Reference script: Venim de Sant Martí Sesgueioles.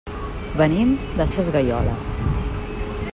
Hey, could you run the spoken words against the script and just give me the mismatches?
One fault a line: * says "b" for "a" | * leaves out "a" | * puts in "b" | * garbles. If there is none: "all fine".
* leaves out "Sant Martí"